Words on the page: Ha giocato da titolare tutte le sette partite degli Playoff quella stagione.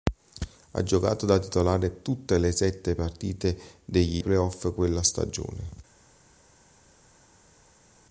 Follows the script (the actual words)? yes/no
yes